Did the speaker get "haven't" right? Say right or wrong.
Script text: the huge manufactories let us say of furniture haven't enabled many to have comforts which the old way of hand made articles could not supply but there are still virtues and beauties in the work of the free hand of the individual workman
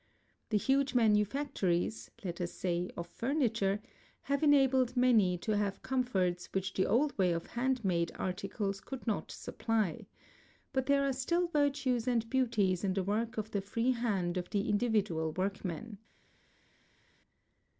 wrong